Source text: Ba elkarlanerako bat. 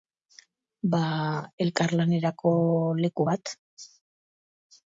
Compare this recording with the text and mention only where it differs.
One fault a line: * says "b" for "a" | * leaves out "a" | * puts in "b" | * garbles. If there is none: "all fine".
* puts in "leku"